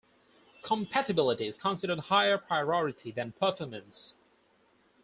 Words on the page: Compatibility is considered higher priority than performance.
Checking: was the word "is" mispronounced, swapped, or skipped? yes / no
no